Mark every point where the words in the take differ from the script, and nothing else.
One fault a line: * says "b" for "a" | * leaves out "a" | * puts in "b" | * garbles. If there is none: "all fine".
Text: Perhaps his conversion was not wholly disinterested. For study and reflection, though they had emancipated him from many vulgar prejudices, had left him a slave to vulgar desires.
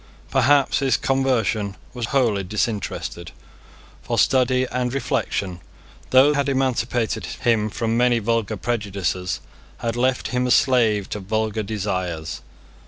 * leaves out "not"
* leaves out "they"